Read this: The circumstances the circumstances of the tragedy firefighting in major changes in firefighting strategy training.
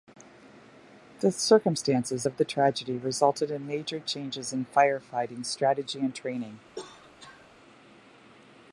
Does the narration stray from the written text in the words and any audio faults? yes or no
yes